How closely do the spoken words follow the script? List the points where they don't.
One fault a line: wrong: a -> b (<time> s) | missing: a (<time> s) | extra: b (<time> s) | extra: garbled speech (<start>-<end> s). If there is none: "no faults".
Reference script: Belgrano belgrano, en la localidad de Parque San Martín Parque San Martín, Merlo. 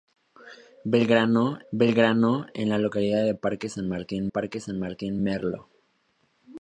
no faults